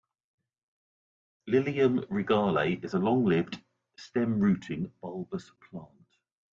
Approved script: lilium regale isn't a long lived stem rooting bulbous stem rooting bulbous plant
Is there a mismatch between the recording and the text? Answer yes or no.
yes